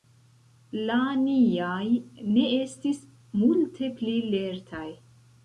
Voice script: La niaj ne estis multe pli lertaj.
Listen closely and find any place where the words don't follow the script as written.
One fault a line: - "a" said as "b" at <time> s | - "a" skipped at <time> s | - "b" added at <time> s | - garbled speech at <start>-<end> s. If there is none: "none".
none